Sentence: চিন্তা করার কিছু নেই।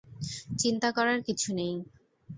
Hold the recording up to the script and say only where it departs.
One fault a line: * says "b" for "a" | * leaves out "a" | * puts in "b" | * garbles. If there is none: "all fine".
all fine